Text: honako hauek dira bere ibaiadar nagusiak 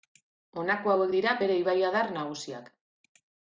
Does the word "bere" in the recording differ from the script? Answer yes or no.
no